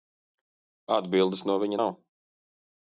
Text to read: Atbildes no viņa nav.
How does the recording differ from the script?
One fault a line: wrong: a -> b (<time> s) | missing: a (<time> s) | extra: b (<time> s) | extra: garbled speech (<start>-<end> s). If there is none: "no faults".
no faults